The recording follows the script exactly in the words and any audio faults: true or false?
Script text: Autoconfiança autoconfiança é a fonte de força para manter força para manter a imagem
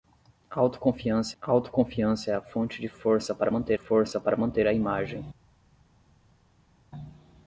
true